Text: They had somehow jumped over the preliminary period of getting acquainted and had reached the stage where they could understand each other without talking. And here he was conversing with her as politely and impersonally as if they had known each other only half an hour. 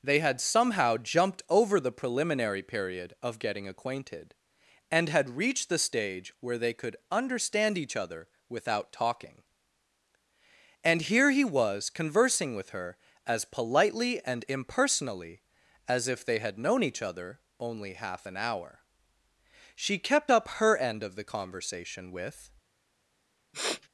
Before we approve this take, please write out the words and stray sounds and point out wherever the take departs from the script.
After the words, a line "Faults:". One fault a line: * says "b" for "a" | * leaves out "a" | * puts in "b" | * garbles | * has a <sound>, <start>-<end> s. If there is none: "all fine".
They had somehow jumped over the preliminary period of getting acquainted and had reached the stage where they could understand each other without talking. And here he was conversing with her as politely and impersonally as if they had known each other only half an hour. She kept up her end of the conversation with
Faults:
* puts in "She kept up her end of the conversation with"
* has a sniff, 23.5-23.9 s